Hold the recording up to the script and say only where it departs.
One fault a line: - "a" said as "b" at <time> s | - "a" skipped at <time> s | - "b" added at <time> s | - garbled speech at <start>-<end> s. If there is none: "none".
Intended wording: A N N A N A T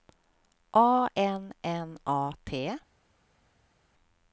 - "N A" skipped at 2.3 s